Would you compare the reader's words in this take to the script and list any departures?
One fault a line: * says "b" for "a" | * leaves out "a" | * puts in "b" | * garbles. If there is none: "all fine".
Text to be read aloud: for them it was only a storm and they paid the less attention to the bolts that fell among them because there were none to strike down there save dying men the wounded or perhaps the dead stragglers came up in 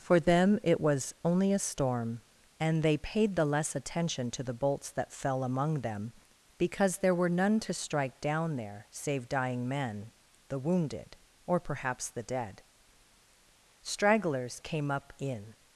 all fine